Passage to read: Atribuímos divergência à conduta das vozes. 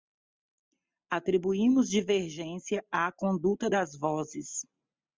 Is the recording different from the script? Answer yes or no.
no